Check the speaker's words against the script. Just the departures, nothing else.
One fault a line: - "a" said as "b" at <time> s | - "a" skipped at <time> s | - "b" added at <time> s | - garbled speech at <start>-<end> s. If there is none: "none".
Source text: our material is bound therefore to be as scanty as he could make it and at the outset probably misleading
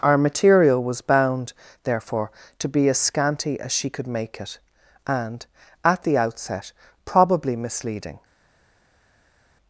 - "is" said as "was" at 0.8 s
- "he" said as "she" at 3.7 s